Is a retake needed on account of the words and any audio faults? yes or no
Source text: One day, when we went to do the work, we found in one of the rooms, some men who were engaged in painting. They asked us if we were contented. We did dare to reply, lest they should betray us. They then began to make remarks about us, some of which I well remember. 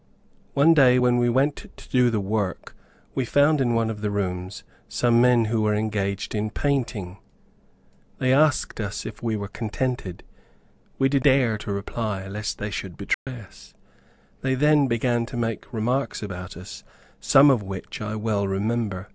yes